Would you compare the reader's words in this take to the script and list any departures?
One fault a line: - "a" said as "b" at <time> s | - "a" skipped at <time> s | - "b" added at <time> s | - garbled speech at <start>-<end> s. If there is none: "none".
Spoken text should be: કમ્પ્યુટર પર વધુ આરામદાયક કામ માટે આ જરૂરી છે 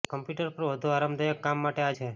- "જરૂરી" skipped at 1.9 s